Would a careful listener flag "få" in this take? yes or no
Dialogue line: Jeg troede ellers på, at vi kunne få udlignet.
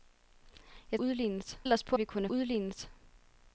yes